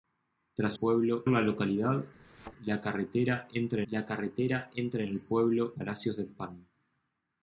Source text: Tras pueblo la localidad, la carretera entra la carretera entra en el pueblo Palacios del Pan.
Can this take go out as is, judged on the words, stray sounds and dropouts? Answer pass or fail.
fail